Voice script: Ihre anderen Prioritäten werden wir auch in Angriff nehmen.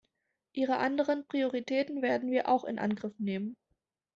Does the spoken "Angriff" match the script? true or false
true